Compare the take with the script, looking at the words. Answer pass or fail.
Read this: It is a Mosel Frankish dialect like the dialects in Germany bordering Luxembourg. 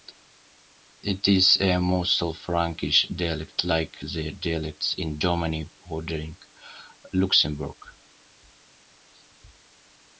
pass